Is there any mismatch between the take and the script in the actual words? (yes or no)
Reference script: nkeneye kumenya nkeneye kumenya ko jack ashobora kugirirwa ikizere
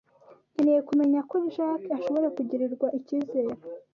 yes